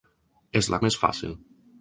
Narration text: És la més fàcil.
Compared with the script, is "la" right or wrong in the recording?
right